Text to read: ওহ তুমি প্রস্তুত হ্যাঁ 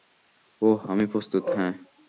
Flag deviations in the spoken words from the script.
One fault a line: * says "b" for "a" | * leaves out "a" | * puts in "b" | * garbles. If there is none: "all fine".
* says "আমি" for "তুমি"